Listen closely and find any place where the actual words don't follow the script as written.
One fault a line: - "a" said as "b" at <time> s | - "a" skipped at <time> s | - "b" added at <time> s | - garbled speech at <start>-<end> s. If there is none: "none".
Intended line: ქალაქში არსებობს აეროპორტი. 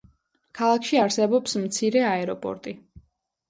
- "მცირე" added at 1.7 s